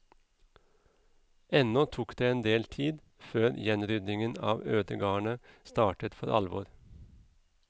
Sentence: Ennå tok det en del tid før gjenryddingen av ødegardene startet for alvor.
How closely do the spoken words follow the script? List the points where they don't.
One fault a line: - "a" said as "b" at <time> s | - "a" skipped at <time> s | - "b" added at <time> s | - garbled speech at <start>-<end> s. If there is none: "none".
none